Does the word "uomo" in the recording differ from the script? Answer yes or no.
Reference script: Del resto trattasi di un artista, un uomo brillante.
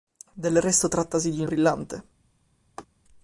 yes